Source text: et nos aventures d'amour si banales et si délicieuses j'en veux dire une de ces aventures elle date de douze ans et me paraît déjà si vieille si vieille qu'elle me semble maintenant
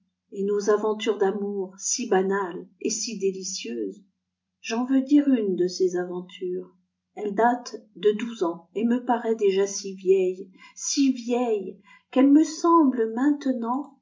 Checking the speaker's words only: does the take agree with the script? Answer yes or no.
yes